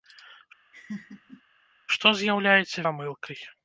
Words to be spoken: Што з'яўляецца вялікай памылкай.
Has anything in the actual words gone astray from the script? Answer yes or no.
yes